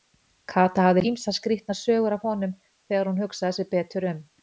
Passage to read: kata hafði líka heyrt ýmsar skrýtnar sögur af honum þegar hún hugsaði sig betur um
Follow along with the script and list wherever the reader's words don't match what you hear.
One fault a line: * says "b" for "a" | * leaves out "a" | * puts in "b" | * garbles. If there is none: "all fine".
* leaves out "líka heyrt"